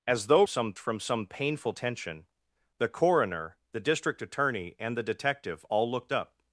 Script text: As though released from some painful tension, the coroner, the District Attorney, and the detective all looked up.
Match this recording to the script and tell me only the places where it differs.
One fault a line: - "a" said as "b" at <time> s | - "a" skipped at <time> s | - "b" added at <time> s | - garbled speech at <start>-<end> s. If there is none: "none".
- "released" said as "some" at 0.5 s